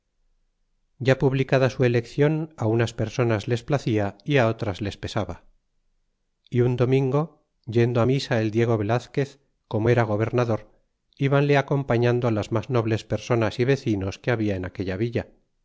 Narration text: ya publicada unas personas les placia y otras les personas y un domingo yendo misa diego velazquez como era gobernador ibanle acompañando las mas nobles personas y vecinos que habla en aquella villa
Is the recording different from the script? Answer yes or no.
yes